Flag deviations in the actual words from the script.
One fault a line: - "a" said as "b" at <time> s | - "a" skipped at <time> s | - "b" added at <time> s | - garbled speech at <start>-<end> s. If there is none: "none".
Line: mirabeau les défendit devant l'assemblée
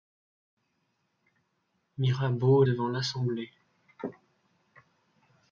- "les défendit" skipped at 2.6 s